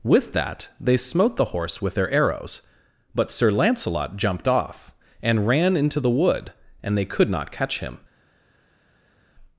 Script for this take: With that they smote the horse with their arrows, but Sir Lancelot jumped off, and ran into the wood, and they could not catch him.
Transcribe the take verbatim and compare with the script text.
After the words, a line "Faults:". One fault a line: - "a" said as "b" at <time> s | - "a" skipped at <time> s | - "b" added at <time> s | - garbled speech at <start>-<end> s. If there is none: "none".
With that they smote the horse with their arrows, but Sir Lancelot jumped off, and ran into the wood, and they could not catch him.
Faults:
none